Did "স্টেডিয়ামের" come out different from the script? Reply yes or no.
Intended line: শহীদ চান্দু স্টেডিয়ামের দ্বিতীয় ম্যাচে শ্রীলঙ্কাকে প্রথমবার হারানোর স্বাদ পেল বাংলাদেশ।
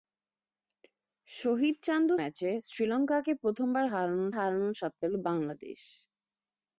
yes